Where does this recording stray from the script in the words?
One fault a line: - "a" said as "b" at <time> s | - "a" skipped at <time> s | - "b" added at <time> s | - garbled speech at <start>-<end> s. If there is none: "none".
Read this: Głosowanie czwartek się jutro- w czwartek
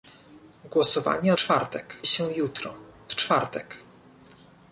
none